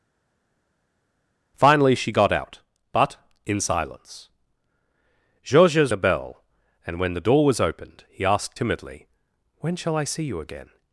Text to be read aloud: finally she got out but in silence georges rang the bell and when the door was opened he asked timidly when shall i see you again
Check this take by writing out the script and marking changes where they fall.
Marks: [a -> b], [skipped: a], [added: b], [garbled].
finally she got out but in silence georges [skipped: rang] the bell and when the door was opened he asked timidly when shall i see you again